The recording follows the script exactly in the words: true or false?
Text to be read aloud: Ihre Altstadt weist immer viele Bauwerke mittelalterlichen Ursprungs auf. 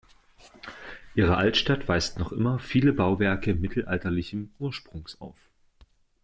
false